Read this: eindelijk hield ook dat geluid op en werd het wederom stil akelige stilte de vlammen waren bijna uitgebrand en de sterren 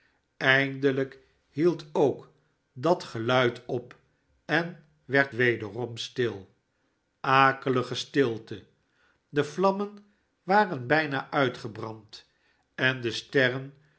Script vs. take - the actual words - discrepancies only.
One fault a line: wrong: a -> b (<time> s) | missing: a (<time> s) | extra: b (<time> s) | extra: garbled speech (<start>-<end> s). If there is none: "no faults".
missing: het (5.3 s)